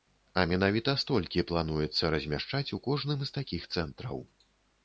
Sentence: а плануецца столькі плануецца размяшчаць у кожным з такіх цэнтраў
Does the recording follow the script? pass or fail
fail